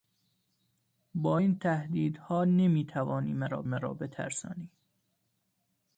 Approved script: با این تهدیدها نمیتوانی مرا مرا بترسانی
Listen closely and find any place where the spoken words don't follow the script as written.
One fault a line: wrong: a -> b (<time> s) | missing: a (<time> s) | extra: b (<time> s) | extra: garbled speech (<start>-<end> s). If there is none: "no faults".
no faults